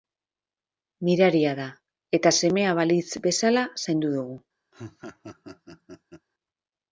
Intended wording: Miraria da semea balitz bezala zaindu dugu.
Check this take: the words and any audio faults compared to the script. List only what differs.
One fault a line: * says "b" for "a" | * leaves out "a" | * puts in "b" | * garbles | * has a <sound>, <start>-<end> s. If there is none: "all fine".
* puts in "eta"
* has a laugh, 4.7-6.3 s